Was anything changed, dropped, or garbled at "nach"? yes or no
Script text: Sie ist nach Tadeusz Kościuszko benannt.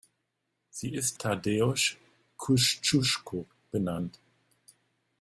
yes